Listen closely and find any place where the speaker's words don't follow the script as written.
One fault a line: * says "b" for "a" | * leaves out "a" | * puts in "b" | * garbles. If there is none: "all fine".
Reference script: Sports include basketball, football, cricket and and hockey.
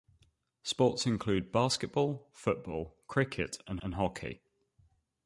all fine